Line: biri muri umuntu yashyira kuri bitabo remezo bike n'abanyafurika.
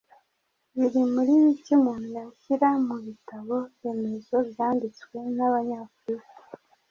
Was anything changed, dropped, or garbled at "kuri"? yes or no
yes